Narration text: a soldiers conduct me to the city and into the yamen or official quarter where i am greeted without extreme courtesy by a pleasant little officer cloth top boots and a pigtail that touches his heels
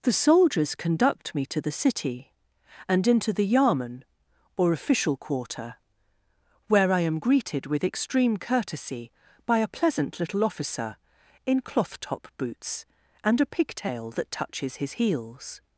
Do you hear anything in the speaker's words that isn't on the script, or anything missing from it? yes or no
yes